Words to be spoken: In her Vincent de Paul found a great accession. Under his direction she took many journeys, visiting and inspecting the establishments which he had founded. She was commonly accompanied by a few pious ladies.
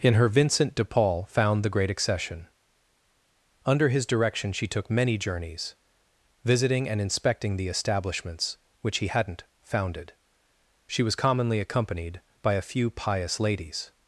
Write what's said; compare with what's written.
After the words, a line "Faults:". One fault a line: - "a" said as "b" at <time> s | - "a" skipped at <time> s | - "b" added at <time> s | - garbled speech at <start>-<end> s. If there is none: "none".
In her Vincent de Paul found the great accession. Under his direction she took many journeys, visiting and inspecting the establishments which he hadn't founded. She was commonly accompanied by a few pious ladies.
Faults:
- "a" said as "the" at 1.6 s
- "had" said as "hadn't" at 9.0 s